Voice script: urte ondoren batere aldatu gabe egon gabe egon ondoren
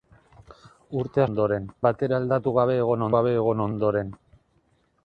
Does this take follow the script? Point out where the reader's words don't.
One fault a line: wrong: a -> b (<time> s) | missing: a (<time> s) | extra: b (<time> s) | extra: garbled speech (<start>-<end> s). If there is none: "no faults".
no faults